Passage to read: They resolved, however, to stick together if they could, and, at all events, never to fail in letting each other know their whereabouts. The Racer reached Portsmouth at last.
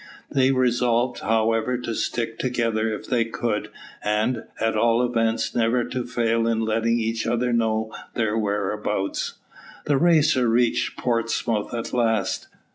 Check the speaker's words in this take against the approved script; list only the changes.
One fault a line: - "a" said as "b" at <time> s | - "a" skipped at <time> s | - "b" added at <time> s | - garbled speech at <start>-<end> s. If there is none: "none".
none